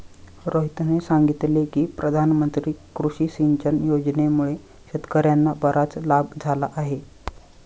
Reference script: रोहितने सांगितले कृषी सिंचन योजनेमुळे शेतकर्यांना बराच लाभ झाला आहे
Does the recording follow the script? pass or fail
fail